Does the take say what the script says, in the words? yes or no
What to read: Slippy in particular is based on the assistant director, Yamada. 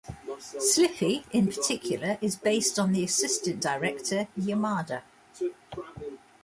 yes